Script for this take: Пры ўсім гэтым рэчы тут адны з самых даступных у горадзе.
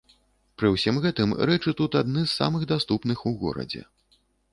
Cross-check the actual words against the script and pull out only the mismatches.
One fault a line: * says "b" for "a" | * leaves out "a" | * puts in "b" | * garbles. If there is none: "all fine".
all fine